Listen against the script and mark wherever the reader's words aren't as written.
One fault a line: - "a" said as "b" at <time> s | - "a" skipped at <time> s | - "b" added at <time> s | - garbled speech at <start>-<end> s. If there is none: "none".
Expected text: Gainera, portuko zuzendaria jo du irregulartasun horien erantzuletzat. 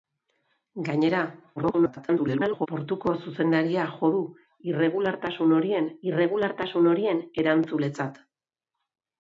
- garbled speech at 1.6-2.7 s
- "irregulartasun horien" added at 6.1 s